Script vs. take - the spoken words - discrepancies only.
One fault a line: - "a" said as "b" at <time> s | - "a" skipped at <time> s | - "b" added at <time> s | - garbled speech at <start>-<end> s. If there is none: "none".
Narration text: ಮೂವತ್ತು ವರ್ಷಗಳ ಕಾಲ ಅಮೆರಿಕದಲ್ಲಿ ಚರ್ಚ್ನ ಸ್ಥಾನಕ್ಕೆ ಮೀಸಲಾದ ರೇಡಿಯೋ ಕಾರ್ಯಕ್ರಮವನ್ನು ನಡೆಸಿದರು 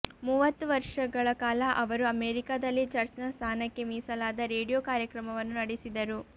- "ಅವರು" added at 1.8 s